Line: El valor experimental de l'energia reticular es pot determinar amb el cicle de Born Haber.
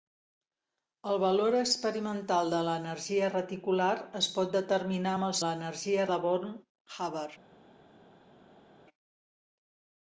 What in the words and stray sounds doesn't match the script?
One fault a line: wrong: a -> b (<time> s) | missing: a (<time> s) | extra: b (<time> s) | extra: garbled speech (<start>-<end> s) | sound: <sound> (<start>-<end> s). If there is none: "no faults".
wrong: cicle -> l'energia (5.4 s)